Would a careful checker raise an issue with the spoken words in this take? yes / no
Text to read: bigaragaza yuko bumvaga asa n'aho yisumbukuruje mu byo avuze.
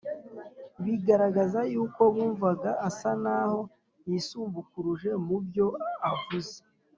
no